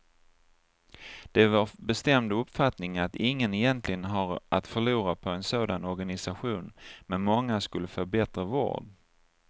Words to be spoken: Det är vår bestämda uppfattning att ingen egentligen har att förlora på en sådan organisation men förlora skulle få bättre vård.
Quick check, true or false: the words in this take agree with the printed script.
false